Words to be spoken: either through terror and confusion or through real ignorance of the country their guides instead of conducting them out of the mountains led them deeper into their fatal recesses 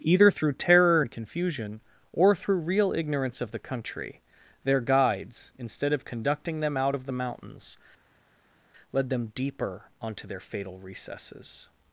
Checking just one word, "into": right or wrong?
wrong